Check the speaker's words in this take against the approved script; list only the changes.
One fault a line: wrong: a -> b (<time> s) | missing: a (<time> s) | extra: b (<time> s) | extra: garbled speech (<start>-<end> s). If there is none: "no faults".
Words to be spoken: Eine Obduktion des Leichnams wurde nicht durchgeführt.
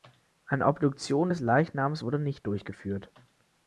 no faults